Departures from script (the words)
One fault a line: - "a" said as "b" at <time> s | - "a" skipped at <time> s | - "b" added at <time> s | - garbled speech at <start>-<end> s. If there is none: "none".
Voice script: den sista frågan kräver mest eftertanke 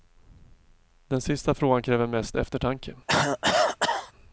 none